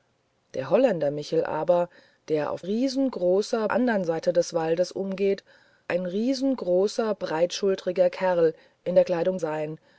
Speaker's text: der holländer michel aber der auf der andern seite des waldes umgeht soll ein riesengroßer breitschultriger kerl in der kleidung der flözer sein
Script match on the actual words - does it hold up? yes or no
no